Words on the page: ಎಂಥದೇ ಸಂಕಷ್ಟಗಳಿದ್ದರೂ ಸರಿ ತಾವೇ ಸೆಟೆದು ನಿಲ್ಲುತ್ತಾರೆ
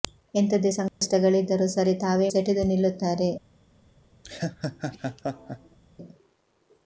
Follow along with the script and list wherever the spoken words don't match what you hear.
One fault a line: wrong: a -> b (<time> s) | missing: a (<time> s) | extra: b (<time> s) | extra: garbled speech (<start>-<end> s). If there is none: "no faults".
no faults